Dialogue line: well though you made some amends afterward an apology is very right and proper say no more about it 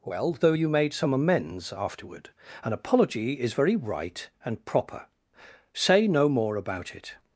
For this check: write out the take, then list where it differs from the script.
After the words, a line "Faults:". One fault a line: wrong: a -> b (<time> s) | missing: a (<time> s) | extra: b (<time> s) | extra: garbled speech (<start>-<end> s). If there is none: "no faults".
well though you made some amends afterward an apology is very right and proper say no more about it
Faults:
no faults